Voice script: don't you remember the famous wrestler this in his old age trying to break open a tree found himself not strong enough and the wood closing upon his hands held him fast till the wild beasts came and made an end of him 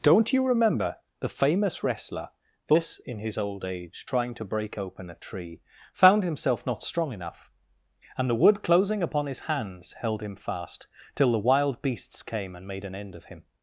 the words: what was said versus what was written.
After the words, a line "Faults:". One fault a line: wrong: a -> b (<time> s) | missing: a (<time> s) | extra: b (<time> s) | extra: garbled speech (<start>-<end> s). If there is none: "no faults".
don't you remember the famous wrestler this in his old age trying to break open a tree found himself not strong enough and the wood closing upon his hands held him fast till the wild beasts came and made an end of him
Faults:
no faults